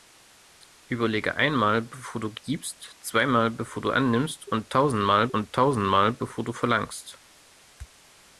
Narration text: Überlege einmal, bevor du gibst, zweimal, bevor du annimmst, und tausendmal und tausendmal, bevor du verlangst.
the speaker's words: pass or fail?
pass